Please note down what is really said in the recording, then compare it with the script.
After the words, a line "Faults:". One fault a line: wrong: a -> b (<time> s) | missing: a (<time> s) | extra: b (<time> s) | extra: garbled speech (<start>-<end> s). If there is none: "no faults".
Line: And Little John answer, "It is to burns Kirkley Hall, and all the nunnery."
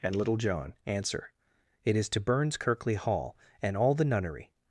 And Little John answer, "It is to burns Kirkley Hall, and all the nunnery."
Faults:
no faults